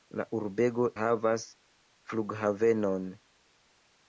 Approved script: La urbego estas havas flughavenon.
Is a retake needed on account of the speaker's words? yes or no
yes